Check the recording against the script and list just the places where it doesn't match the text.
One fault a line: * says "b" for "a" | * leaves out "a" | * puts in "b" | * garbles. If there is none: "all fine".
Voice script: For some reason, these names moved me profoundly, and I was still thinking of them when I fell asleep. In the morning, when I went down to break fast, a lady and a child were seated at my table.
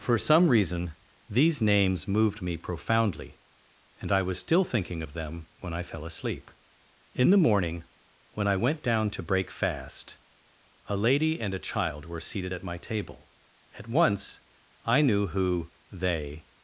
* puts in "At once I knew who they"